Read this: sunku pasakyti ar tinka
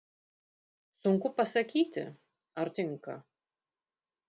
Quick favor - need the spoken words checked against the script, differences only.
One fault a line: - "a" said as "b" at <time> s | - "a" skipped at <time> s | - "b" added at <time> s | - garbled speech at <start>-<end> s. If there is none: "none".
none